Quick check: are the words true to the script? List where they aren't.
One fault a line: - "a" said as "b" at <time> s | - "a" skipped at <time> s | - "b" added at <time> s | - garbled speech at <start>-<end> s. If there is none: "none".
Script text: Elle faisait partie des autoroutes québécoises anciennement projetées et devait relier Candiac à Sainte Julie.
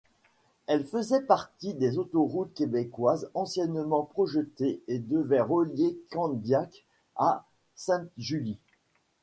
none